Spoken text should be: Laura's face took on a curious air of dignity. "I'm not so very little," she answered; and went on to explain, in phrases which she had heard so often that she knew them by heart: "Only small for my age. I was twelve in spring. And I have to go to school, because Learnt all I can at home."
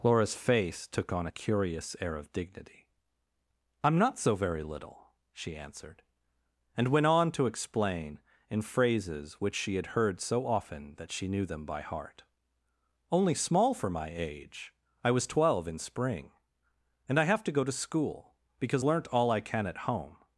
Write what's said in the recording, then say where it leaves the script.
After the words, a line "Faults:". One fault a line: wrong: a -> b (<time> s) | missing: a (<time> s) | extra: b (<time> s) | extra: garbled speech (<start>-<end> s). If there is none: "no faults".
Laura's face took on a curious air of dignity. "I'm not so very little," she answered; and went on to explain, in phrases which she had heard so often that she knew them by heart: "Only small for my age. I was twelve in spring. And I have to go to school, because Learnt all I can at home."
Faults:
no faults